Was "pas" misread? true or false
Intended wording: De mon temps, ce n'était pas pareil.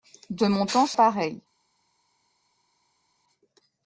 true